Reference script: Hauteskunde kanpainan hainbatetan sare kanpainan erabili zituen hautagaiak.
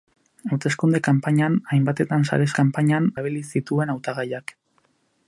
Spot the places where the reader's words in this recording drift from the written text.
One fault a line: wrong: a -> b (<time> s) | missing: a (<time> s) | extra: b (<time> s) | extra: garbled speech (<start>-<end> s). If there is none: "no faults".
no faults